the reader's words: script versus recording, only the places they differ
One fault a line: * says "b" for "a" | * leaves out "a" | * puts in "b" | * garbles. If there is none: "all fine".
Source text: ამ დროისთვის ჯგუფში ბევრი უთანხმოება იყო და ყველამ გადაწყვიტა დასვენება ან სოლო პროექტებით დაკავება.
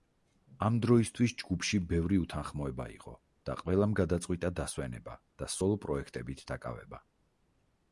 * says "და" for "ან"